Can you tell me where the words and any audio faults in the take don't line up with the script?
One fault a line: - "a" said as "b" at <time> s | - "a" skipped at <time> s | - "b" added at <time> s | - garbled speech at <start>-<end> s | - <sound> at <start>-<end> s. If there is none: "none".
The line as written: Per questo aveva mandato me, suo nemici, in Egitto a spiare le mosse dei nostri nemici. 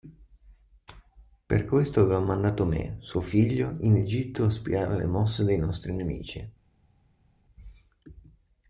- "nemici" said as "figlio" at 3.2 s